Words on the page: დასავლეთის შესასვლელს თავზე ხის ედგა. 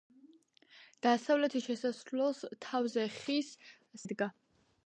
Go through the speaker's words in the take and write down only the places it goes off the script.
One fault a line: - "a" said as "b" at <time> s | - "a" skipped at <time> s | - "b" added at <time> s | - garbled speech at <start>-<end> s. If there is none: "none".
none